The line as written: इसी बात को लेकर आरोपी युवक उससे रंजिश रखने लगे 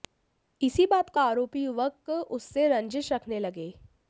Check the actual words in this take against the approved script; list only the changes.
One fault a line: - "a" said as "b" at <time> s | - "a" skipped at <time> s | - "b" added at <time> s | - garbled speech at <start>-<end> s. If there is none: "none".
- "लेकर" skipped at 1.2 s